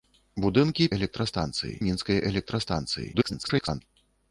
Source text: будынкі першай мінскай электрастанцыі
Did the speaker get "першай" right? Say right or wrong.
wrong